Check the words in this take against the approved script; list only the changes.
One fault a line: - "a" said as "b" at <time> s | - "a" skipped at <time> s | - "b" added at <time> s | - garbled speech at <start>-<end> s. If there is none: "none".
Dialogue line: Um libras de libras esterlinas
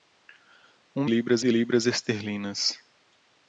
none